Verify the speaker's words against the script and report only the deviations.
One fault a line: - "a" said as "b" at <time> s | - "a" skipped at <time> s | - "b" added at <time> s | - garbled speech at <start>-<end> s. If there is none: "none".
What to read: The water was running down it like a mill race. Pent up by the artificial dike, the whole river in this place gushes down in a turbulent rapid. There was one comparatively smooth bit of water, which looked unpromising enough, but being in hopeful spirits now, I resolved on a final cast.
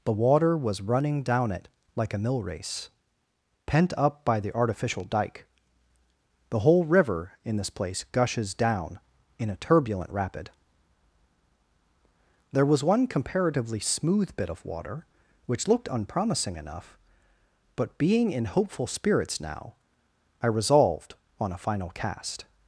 none